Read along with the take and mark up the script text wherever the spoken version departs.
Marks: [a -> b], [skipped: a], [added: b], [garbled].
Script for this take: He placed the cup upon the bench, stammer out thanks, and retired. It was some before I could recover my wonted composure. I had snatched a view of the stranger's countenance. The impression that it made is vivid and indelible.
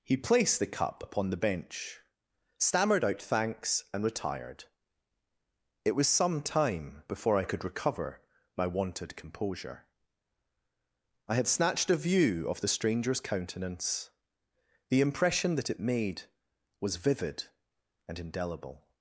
He placed the cup upon the bench, [stammer -> stammered] out thanks, and retired. It was some [added: time] before I could recover my wonted composure. I had snatched a view of the stranger's countenance. The impression that it made [is -> was] vivid and indelible.